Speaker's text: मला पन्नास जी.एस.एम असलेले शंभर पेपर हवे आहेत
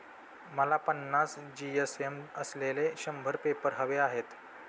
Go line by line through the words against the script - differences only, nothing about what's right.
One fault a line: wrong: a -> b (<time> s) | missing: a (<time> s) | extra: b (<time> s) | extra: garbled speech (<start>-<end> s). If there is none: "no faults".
no faults